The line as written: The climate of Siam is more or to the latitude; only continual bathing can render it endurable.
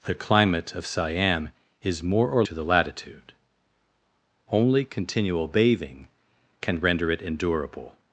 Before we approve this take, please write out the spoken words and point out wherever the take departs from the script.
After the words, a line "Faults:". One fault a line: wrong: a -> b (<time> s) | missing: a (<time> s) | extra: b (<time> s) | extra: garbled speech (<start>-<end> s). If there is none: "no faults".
The climate of Siam is more or to the latitude; only continual bathing can render it endurable.
Faults:
no faults